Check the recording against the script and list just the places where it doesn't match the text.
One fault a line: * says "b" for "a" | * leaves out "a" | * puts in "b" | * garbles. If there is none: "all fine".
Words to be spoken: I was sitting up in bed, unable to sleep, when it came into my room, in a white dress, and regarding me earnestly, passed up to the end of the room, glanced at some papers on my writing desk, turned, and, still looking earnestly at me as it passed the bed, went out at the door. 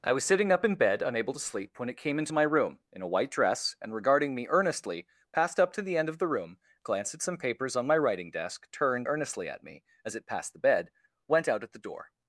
* leaves out "and still looking"